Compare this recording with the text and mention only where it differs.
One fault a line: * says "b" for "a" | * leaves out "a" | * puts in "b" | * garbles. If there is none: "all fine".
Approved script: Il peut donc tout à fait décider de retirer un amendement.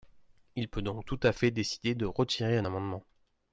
all fine